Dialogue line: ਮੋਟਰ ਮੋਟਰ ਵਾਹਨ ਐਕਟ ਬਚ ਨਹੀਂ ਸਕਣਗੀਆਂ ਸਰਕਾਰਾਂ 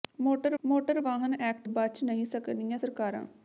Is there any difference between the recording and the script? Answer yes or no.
no